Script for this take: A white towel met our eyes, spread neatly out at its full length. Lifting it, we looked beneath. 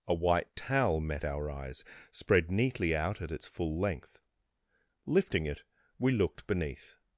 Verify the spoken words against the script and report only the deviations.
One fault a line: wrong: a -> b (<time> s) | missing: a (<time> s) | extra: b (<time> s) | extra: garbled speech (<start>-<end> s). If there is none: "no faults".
no faults